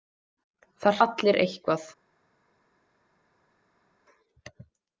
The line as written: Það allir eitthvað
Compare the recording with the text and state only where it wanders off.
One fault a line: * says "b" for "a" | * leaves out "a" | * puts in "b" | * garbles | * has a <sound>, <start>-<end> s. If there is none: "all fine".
all fine